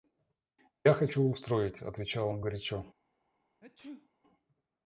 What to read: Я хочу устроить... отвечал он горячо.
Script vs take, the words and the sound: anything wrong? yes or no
yes